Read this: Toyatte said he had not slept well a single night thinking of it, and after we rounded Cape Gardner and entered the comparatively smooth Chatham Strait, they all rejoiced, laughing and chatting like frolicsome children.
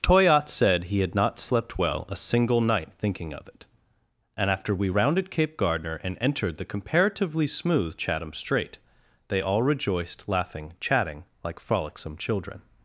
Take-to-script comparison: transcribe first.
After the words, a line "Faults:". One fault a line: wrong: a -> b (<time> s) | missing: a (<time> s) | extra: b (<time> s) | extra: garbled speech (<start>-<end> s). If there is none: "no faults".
Toyatte said he had not slept well a single night thinking of it, and after we rounded Cape Gardner and entered the comparatively smooth Chatham Strait, they all rejoiced, laughing chatting like frolicsome children.
Faults:
missing: and (10.7 s)